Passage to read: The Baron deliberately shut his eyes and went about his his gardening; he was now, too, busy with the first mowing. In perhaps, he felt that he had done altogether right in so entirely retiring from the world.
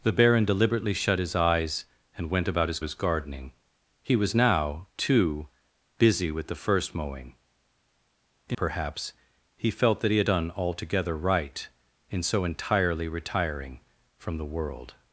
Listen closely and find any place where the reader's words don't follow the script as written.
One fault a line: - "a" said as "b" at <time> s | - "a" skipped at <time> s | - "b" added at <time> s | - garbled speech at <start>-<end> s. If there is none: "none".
none